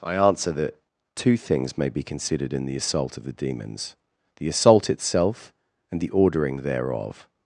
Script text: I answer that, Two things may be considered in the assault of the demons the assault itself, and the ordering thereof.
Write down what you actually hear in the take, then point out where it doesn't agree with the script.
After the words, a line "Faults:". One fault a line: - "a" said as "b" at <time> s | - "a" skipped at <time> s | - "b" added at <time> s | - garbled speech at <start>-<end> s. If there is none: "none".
I answer that, Two things may be considered in the assault of the demons the assault itself, and the ordering thereof.
Faults:
none